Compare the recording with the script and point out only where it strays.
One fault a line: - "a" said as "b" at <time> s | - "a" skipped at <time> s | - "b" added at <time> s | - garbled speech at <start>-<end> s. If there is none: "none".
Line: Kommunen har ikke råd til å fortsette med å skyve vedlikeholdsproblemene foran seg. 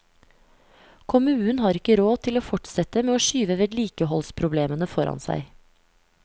none